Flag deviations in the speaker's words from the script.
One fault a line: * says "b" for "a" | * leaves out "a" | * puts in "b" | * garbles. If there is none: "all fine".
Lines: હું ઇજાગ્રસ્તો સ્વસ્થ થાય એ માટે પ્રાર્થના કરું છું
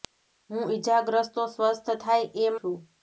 * leaves out "માટે પ્રાર્થના કરું"